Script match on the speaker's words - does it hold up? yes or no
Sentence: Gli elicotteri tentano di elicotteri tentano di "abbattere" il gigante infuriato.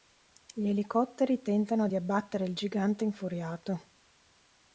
no